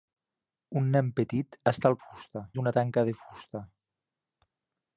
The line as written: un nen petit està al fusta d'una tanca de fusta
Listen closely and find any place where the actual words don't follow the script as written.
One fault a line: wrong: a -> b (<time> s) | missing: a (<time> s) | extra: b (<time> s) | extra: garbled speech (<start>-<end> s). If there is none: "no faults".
no faults